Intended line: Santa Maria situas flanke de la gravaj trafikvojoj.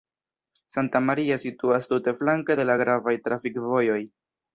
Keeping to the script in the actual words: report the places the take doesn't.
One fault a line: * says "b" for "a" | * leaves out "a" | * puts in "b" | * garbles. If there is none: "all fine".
* puts in "tute"